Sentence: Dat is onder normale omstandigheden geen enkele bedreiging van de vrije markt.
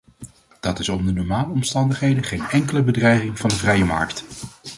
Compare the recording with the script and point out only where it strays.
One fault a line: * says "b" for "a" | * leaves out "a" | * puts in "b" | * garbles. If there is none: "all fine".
all fine